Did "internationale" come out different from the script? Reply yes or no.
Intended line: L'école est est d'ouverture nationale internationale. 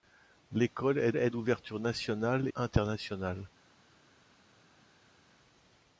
no